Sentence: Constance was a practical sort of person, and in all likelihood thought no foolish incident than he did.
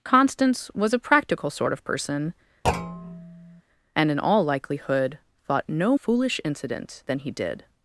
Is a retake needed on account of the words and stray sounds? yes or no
yes